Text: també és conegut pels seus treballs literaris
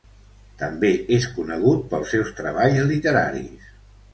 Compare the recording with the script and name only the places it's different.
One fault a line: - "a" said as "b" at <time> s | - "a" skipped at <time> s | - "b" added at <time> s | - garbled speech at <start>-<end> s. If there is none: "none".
none